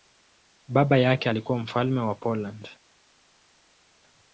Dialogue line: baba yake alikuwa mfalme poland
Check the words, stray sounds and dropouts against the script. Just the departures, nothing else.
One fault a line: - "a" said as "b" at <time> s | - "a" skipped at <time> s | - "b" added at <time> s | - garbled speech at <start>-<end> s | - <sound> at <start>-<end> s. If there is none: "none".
- "wa" added at 2.0 s